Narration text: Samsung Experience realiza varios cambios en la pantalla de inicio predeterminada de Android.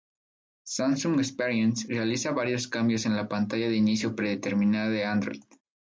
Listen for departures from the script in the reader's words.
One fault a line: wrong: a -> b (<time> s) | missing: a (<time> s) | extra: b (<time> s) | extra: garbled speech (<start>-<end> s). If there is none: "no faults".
no faults